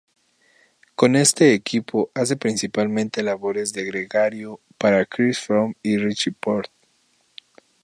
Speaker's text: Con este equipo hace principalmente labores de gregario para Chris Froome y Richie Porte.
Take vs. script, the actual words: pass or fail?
pass